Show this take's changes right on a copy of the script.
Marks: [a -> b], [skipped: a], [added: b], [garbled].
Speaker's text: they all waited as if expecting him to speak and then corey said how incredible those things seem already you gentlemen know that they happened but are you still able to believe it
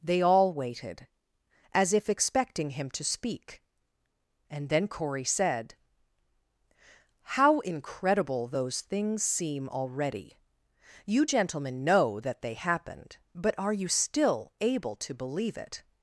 they all waited as if expecting him to speak and then corey said how incredible those things seem already you gentlemen know that they happened but are you still able to believe it